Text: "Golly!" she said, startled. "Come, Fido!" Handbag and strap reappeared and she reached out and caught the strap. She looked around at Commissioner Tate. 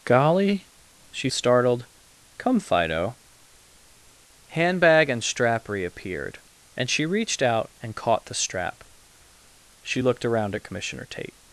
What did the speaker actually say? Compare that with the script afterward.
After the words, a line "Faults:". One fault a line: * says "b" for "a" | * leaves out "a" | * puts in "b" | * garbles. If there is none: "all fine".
"Golly!" she startled. "Come, Fido!" Handbag and strap reappeared and she reached out and caught the strap. She looked around at Commissioner Tate.
Faults:
* leaves out "said"